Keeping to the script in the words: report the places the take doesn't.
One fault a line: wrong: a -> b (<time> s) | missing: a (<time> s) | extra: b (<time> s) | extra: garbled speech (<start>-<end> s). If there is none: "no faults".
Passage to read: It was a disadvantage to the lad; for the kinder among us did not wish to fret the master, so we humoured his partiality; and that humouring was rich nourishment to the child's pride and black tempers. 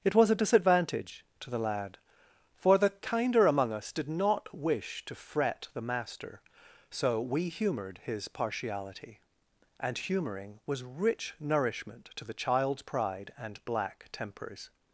missing: that (10.0 s)